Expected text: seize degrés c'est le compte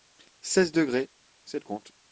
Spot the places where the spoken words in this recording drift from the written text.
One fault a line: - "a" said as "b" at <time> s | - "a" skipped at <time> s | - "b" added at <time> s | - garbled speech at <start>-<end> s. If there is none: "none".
none